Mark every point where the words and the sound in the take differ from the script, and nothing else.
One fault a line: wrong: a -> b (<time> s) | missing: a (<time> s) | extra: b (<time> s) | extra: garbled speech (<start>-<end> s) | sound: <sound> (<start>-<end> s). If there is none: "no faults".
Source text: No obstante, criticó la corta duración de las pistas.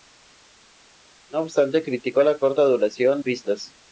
missing: de las (3.2 s)